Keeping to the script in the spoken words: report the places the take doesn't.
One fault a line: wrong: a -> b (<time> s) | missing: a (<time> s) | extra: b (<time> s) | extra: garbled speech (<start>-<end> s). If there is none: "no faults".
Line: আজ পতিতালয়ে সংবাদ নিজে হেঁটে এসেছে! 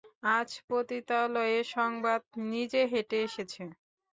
no faults